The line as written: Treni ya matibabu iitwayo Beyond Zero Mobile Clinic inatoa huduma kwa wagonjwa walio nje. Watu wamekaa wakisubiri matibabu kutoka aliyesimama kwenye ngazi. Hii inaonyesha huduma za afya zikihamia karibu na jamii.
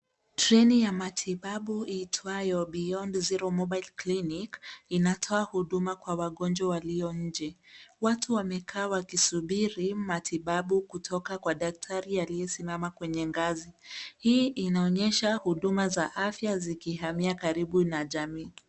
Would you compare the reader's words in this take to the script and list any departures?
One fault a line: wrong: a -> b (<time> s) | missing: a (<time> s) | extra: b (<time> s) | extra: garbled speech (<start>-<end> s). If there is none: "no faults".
extra: kwa daktari (11.4 s)